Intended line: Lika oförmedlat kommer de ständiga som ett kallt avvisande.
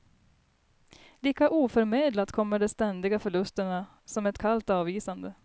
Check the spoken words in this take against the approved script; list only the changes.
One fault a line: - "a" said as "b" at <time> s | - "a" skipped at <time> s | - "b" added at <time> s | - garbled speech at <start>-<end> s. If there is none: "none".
- "förlusterna" added at 3.2 s